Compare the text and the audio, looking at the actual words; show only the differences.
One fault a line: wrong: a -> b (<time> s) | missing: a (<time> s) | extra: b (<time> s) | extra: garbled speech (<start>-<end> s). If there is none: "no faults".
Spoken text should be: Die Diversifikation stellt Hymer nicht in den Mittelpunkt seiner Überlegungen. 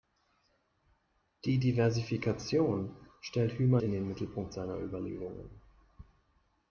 missing: nicht (3.8 s)